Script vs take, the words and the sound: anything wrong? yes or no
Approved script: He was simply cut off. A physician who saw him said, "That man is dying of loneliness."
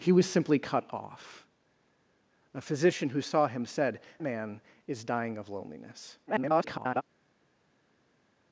yes